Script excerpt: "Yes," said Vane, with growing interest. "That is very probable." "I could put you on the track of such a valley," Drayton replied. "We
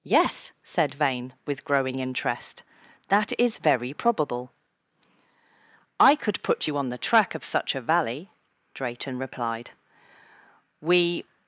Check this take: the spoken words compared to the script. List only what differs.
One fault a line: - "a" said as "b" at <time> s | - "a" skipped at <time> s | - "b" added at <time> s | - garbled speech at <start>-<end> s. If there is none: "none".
none